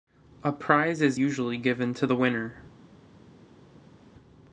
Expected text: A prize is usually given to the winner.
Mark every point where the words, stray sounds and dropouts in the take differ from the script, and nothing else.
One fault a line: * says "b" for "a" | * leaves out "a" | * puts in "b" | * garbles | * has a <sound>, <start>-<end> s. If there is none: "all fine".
all fine